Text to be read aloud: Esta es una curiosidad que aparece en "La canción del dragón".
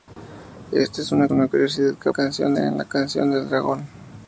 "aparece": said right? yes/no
no